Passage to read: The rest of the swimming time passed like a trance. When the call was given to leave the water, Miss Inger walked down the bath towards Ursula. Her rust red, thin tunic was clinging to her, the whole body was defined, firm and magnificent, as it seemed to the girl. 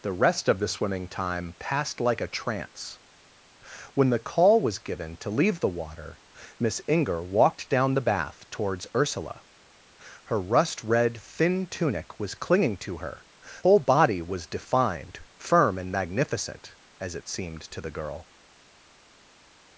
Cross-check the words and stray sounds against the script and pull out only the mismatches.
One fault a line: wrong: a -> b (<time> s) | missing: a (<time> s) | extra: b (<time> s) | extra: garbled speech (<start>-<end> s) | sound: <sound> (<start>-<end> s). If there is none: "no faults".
missing: the (13.2 s)